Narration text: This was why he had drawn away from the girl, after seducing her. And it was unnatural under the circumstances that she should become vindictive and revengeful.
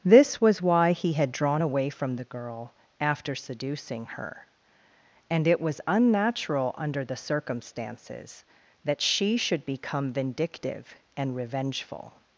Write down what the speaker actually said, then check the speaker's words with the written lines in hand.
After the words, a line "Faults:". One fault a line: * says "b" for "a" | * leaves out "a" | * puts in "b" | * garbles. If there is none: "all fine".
This was why he had drawn away from the girl, after seducing her. And it was unnatural under the circumstances that she should become vindictive and revengeful.
Faults:
all fine